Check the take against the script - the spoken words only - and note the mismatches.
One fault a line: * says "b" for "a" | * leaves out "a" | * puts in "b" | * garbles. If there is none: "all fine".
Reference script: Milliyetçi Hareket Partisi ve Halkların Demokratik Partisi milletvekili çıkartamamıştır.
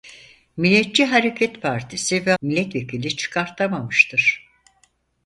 * leaves out "Halkların Demokratik Partisi"